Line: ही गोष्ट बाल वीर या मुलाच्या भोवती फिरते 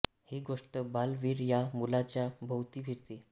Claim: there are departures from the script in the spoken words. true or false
false